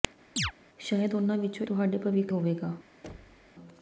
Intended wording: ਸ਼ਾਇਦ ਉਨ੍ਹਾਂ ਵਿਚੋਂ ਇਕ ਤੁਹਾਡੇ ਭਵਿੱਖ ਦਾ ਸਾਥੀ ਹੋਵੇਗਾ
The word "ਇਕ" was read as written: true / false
false